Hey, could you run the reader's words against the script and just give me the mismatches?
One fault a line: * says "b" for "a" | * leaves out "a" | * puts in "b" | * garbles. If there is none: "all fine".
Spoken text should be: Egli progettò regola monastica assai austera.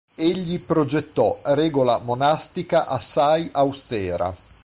all fine